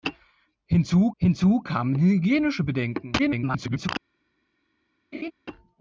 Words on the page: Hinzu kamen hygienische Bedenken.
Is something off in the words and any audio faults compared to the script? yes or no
yes